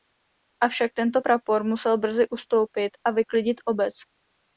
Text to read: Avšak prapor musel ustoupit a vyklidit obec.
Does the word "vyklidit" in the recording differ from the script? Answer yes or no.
no